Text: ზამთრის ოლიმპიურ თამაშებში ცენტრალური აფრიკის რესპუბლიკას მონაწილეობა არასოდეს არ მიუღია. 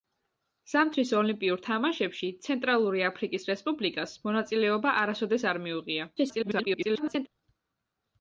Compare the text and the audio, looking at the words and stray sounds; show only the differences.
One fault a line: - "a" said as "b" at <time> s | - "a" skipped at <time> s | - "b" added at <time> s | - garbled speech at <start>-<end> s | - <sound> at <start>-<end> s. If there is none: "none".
- garbled speech at 6.2-7.3 s